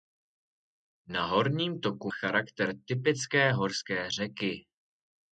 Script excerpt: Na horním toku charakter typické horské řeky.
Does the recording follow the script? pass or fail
pass